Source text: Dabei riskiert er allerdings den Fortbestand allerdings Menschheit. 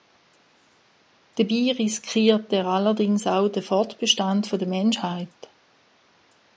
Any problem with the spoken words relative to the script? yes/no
yes